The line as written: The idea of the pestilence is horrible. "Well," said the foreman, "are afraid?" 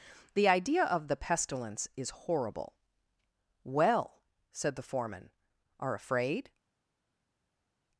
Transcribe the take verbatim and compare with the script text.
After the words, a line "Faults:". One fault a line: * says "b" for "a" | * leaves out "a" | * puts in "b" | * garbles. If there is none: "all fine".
The idea of the pestilence is horrible. "Well," said the foreman, "are afraid?"
Faults:
all fine